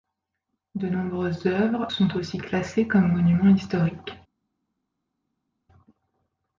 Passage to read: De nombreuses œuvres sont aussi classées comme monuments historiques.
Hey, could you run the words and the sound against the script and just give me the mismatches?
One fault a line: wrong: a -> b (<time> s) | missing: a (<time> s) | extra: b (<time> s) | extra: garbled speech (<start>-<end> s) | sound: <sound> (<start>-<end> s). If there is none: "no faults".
no faults